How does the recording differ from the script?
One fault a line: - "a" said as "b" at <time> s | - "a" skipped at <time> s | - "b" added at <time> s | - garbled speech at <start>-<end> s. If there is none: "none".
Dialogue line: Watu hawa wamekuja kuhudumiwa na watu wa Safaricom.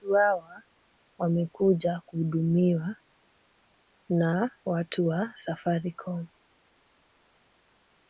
none